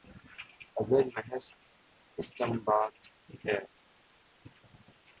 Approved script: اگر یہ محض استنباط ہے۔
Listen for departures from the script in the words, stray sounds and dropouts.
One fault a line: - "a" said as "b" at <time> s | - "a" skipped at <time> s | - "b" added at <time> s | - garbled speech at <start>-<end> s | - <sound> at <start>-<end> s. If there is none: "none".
- "یہ" skipped at 1.1 s